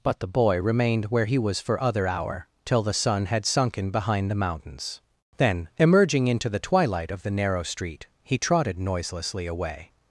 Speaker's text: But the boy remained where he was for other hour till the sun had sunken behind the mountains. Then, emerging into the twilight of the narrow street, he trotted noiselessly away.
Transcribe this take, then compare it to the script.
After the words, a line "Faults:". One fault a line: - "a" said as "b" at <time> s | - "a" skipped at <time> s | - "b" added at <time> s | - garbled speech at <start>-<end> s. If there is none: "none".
But the boy remained where he was for other hour till the sun had sunken behind the mountains. Then, emerging into the twilight of the narrow street, he trotted noiselessly away.
Faults:
none